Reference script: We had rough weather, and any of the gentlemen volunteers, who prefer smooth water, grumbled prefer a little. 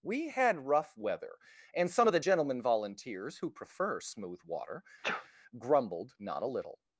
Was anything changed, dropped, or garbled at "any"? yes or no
yes